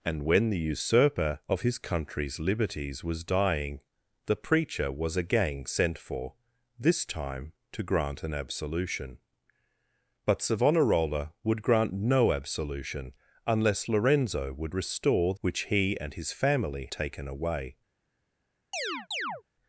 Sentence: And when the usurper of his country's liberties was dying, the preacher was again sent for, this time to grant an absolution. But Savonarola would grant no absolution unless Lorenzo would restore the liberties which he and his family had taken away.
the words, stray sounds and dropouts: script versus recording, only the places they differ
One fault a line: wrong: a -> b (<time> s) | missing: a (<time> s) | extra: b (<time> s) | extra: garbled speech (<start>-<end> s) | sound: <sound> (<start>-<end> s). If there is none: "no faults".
missing: the liberties (15.3 s)
missing: had (16.9 s)
sound: chirp (18.7-19.4 s)